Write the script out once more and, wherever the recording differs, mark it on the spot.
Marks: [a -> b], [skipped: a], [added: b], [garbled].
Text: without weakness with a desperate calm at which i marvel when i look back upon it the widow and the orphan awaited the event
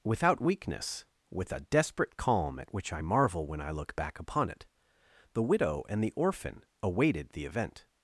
without weakness with a desperate calm at which i marvel when i look back upon it the widow and the orphan awaited the event